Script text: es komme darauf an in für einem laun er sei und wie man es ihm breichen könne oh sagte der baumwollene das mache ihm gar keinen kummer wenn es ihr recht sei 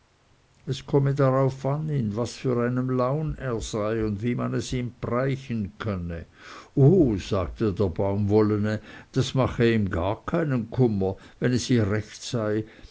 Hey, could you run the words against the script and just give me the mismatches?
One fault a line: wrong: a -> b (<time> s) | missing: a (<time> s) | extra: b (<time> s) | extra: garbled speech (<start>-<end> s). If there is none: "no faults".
extra: was (2.1 s)